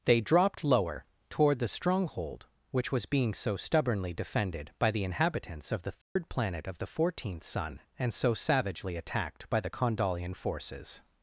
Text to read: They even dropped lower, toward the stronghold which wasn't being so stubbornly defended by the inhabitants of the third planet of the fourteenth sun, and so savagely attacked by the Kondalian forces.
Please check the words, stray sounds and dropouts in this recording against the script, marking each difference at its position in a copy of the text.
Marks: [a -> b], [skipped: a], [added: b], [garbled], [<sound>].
They [skipped: even] dropped lower, toward the stronghold which [wasn't -> was] being so stubbornly defended by the inhabitants of the third [dropout] planet of the fourteenth sun, and so savagely attacked by the Kondalian forces.